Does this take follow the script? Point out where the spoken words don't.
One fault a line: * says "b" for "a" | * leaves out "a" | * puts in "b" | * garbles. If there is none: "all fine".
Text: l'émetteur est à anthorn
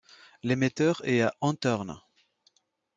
all fine